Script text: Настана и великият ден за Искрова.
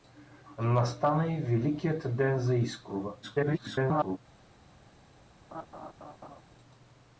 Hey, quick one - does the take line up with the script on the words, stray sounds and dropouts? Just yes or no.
no